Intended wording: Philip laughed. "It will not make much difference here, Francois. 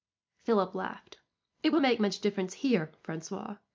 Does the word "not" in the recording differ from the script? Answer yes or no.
yes